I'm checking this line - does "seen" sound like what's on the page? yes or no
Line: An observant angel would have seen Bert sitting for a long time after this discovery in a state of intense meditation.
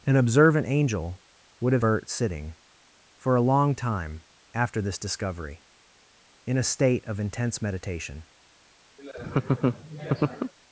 no